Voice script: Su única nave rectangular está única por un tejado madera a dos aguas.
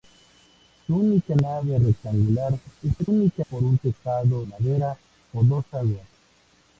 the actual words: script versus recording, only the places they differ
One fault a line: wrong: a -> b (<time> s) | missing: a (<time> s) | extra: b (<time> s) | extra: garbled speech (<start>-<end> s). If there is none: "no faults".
no faults